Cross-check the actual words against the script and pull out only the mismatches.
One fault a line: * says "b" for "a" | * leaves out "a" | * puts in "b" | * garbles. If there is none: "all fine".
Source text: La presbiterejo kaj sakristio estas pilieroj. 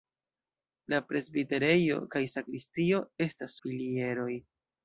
all fine